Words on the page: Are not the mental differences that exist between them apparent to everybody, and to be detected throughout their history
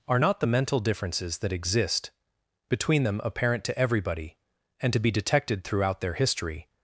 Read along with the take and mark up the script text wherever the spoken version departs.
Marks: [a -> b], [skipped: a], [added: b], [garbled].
Are not the mental differences that exist between them apparent to everybody, and to be detected throughout their history